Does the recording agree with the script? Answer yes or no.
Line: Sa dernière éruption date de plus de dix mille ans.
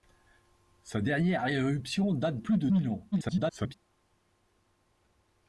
no